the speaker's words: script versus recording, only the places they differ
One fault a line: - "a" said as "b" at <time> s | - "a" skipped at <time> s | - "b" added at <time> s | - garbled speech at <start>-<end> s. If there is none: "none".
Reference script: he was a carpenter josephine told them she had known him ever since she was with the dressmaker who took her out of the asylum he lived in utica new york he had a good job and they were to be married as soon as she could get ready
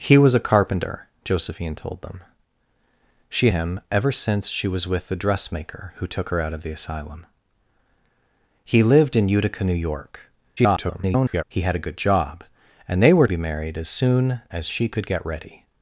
- "had known" skipped at 3.5 s
- garbled speech at 10.6-11.4 s
- "to" skipped at 13.3 s